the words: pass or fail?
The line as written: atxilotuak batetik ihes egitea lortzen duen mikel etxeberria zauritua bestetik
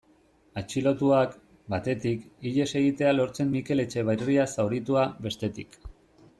fail